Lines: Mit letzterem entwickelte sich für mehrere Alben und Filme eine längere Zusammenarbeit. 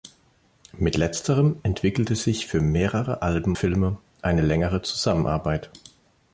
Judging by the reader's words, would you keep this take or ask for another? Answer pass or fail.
fail